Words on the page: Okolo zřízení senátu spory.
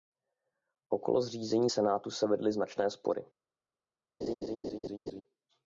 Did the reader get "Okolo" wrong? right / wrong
right